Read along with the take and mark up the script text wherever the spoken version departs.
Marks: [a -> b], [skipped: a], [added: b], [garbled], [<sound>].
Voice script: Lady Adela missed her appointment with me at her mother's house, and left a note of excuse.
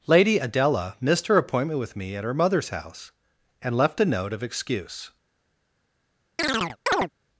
Lady Adela missed her appointment with me at her mother's house, and left a note of excuse. [chirp]